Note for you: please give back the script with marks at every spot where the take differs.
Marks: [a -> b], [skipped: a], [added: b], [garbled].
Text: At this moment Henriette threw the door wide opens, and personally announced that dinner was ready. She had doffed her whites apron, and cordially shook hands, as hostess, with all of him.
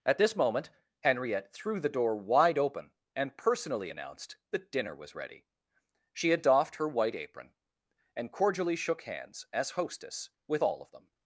At this moment Henriette threw the door wide [opens, -> open] and personally announced that dinner was ready. She had doffed her [whites -> white] apron, and cordially shook hands, as hostess, with all of [him. -> them]